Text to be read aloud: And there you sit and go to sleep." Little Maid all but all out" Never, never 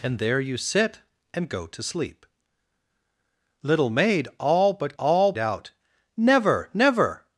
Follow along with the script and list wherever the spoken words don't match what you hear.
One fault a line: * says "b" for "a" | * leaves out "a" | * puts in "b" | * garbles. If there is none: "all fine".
all fine